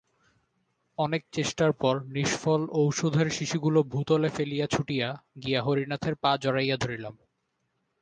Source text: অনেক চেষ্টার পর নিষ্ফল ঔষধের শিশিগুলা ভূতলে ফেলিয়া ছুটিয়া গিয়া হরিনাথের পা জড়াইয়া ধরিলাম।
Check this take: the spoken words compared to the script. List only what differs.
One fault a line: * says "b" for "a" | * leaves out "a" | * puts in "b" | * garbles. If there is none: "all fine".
all fine